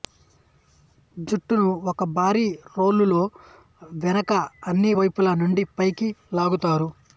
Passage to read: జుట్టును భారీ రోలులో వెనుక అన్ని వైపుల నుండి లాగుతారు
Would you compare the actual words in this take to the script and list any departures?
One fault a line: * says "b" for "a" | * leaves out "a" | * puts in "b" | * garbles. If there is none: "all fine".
* puts in "ఒక"
* puts in "పైకి"